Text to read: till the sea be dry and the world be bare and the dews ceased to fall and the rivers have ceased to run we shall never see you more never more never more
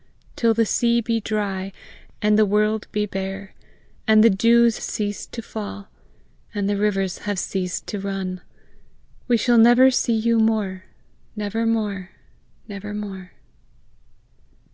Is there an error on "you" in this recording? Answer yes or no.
no